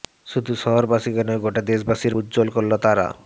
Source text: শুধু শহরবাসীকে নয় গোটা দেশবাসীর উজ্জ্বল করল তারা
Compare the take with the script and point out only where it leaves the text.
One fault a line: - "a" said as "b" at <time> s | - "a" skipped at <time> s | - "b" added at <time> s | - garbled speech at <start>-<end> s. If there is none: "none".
none